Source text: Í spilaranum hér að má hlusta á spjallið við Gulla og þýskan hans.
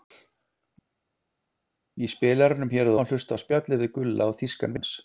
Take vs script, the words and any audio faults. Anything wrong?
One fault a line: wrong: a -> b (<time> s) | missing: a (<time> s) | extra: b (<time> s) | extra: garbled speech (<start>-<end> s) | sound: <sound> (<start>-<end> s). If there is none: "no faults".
no faults